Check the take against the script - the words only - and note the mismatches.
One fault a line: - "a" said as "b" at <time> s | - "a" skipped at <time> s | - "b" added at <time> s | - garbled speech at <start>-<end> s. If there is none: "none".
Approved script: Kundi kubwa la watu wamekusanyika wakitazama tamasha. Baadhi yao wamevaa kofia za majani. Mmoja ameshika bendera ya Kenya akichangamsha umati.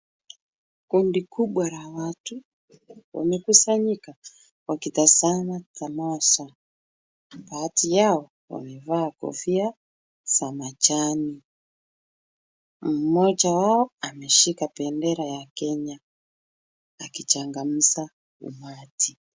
- "wao" added at 13.5 s